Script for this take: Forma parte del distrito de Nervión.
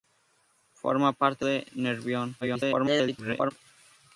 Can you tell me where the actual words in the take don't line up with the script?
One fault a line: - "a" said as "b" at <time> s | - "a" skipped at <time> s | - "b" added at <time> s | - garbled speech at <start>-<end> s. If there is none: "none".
- "del distrito" skipped at 1.4 s
- garbled speech at 2.4-3.5 s